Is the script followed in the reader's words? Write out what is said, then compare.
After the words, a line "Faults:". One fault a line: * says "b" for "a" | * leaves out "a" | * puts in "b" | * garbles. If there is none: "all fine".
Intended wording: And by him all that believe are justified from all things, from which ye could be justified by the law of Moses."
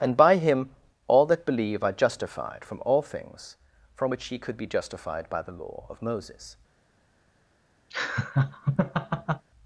And by him all that believe are justified from all things, from which ye could be justified by the law of Moses."
Faults:
all fine